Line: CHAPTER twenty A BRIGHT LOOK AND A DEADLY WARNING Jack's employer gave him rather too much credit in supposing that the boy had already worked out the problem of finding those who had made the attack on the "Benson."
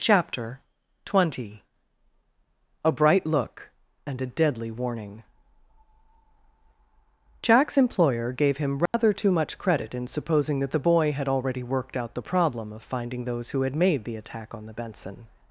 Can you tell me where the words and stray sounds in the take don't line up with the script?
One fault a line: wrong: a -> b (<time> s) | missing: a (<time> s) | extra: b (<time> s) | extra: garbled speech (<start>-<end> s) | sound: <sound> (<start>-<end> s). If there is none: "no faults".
sound: dropout (8.9-8.9 s)